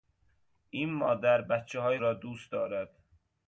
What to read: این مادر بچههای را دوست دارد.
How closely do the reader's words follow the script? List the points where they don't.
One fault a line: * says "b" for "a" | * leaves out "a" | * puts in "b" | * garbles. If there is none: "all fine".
all fine